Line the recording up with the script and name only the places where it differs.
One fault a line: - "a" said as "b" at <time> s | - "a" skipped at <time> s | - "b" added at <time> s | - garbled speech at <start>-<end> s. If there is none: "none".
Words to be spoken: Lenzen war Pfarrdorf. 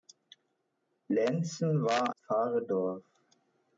none